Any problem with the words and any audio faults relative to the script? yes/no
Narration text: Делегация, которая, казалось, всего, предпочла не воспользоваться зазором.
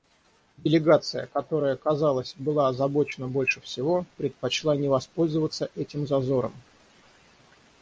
yes